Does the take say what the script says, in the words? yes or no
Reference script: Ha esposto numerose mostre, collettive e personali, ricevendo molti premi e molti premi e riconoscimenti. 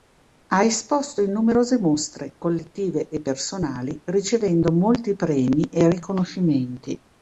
no